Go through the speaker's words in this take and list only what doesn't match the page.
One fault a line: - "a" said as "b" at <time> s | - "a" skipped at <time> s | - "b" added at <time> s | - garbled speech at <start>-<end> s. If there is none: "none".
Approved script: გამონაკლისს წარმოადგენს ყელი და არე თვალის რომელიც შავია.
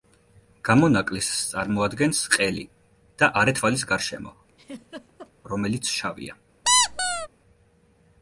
- "გარშემო" added at 3.9 s